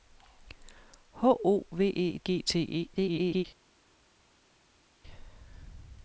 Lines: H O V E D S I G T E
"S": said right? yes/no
no